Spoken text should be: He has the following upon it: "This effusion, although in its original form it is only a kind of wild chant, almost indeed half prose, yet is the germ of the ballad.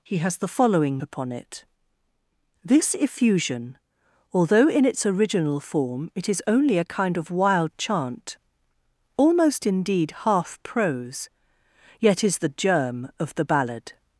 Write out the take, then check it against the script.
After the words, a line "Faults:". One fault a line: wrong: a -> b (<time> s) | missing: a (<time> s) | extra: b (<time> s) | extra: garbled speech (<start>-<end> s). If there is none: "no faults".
He has the following upon it: "This effusion, although in its original form it is only a kind of wild chant, almost indeed half prose, yet is the germ of the ballad.
Faults:
no faults